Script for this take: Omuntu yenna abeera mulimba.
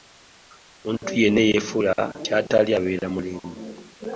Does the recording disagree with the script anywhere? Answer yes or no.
yes